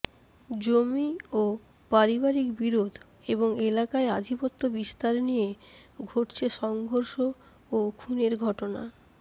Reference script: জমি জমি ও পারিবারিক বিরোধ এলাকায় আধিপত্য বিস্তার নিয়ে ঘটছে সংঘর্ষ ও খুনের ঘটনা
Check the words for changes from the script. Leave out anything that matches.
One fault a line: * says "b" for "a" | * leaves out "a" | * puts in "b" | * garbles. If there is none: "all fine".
* leaves out "জমি"
* puts in "এবং"